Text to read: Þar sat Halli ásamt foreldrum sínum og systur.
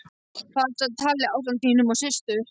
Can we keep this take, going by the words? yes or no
no